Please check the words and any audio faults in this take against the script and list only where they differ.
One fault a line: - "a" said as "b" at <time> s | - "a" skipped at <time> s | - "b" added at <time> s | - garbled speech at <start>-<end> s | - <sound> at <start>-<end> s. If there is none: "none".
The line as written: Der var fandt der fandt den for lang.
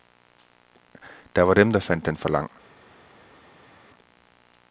- "fandt" said as "dem" at 1.5 s